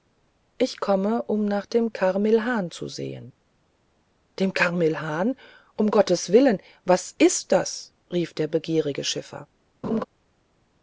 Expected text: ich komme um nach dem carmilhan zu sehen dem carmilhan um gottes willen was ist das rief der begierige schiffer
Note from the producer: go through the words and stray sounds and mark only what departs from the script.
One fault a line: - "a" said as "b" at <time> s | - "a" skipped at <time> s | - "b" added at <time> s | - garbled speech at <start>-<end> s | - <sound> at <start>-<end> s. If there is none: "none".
- laugh at 9.8-10.0 s